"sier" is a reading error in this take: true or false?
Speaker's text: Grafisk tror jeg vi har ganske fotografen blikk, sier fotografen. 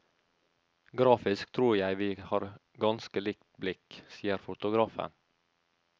false